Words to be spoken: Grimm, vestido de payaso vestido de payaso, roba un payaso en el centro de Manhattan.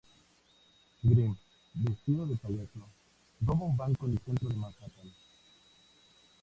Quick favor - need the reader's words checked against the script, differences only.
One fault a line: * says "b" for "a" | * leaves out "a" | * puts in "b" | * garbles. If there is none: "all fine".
* leaves out "vestido de payaso"
* says "banco" for "payaso"